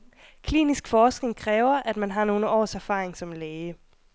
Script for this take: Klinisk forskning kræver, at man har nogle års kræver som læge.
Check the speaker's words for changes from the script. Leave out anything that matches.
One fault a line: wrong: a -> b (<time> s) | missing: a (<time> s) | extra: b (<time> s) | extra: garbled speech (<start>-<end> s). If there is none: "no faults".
wrong: kræver -> erfaring (2.7 s)